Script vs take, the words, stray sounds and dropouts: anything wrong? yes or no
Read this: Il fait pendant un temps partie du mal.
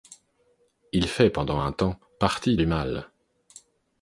no